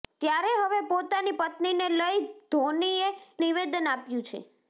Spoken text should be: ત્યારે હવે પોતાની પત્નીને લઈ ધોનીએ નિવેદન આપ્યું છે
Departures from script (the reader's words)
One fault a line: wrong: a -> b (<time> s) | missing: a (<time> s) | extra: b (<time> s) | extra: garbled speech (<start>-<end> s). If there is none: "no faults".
no faults